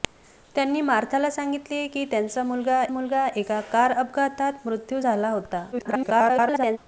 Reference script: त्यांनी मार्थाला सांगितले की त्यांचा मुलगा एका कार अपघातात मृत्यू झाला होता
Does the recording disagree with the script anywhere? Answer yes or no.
yes